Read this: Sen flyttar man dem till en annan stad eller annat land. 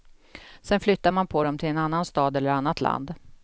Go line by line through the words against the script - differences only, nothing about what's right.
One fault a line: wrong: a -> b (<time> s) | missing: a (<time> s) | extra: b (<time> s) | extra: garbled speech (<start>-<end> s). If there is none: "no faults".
extra: på (1.3 s)